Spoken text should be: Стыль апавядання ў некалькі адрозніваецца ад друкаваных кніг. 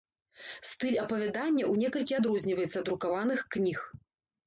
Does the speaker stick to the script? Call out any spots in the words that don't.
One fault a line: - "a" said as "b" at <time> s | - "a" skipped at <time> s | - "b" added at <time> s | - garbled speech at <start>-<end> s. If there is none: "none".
none